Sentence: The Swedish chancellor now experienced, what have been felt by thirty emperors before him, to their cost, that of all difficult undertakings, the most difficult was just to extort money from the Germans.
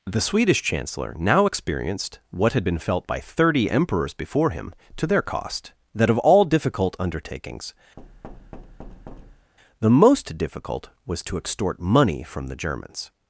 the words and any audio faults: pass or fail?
fail